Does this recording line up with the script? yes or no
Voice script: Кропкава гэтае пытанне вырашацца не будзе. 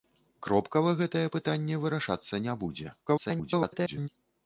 no